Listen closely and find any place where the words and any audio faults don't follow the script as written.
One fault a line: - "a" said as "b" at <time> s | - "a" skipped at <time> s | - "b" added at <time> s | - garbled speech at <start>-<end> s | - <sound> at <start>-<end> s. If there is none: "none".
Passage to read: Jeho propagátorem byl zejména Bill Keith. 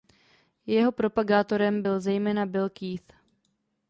none